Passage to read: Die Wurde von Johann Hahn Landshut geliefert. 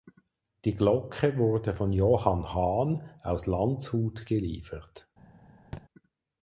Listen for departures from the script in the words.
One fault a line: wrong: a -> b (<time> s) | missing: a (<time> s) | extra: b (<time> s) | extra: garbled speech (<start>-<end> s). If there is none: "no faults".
extra: Glocke (0.7 s)
extra: aus (3.2 s)